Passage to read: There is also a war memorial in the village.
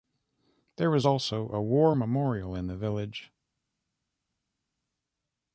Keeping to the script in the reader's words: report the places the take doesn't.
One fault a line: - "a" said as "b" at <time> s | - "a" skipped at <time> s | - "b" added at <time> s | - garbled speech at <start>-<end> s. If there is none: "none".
none